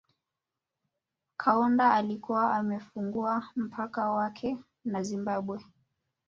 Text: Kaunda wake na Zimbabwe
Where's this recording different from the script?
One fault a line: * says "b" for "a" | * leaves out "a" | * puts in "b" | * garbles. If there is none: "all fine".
* puts in "alikuwa amefungua mpaka"